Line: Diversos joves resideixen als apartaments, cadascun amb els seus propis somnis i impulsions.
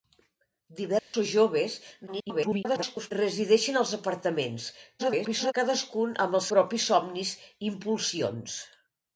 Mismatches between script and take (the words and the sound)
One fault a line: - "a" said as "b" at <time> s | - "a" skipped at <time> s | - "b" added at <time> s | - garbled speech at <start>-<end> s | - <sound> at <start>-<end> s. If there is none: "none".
- dropout at 1.0-1.1 s
- garbled speech at 2.1-3.1 s
- garbled speech at 5.0-5.5 s
- "seus" skipped at 6.5 s